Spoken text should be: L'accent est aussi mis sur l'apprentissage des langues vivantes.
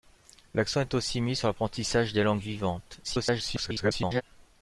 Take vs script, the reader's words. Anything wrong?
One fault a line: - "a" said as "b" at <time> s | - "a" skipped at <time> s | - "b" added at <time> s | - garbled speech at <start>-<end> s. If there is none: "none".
- garbled speech at 3.0-4.2 s